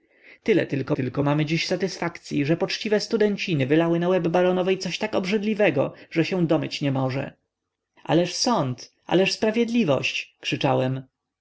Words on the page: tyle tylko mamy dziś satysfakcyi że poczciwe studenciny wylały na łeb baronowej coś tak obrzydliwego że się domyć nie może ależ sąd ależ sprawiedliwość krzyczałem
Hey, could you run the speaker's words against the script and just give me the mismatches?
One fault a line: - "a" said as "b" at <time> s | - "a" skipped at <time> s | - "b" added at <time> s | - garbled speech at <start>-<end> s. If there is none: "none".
- "tylko" added at 0.9 s